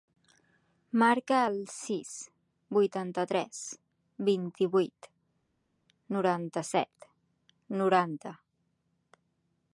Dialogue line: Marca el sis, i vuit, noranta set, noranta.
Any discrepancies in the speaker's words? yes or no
yes